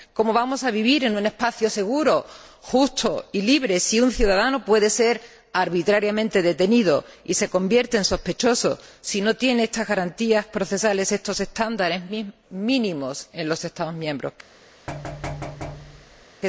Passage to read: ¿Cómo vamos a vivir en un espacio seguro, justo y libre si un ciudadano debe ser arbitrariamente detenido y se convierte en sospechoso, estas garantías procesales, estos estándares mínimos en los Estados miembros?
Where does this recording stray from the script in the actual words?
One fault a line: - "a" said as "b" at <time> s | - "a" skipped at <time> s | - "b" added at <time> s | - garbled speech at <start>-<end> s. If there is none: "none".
- "debe" said as "puede" at 4.7 s
- "si no tiene" added at 9.0 s